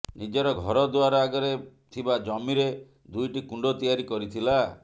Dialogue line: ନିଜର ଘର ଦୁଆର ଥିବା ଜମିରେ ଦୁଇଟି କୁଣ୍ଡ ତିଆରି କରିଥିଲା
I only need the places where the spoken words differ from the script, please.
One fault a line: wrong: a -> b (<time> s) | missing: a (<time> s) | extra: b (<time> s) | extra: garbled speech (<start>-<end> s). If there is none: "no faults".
extra: ଆଗରେ (1.2 s)